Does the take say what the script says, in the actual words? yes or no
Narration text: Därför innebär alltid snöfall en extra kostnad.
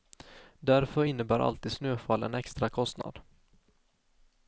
yes